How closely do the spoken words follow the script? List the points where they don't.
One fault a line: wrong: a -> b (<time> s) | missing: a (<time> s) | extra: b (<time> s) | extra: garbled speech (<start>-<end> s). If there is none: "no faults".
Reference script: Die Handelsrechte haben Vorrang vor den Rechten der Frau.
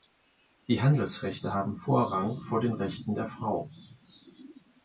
no faults